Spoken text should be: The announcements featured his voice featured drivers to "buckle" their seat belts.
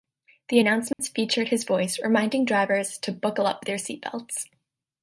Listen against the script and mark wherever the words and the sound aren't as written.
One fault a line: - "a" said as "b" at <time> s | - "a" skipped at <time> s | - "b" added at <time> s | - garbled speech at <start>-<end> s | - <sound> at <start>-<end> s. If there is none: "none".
- dropout at 0.9-1.0 s
- "featured" said as "reminding" at 2.0 s
- "up" added at 3.5 s